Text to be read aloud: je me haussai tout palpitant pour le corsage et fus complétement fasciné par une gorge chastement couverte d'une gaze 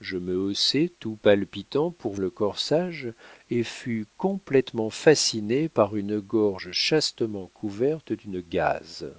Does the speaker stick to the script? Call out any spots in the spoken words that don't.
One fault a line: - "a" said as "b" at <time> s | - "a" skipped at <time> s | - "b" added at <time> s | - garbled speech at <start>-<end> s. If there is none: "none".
none